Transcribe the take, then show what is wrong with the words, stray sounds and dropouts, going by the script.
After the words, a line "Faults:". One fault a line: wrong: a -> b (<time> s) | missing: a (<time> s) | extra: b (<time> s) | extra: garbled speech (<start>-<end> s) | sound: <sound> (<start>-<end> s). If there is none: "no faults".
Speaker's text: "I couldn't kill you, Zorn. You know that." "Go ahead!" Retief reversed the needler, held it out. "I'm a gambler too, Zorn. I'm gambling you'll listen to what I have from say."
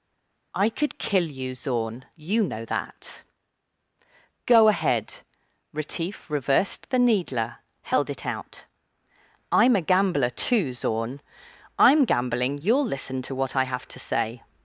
"I could kill you, Zorn. You know that." "Go ahead!" Retief reversed the needler, held it out. "I'm a gambler too, Zorn. I'm gambling you'll listen to what I have to say."
Faults:
wrong: couldn't -> could (0.7 s)
wrong: from -> to (13.9 s)